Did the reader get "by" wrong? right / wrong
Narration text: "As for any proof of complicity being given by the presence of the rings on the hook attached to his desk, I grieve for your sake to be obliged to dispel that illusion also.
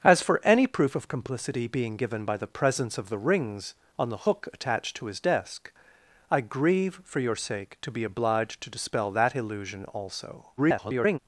right